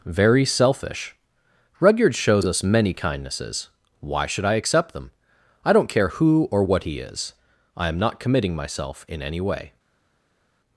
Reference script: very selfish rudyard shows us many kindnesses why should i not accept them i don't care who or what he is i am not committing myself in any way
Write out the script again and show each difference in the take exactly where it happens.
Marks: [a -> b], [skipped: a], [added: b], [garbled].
very selfish rudyard shows us many kindnesses why should i [skipped: not] accept them i don't care who or what he is i am not committing myself in any way